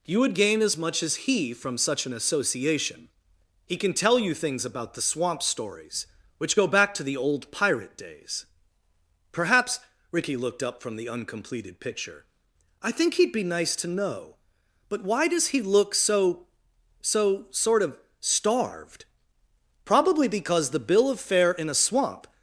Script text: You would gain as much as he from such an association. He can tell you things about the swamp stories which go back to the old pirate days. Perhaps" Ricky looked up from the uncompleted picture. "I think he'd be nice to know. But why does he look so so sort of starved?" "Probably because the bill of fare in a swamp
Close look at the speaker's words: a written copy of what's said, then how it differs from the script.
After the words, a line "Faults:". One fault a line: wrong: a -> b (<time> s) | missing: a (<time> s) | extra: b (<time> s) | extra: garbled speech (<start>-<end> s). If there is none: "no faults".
You would gain as much as he from such an association. He can tell you things about the swamp stories which go back to the old pirate days. Perhaps" Ricky looked up from the uncompleted picture. "I think he'd be nice to know. But why does he look so so sort of starved?" "Probably because the bill of fare in a swamp
Faults:
no faults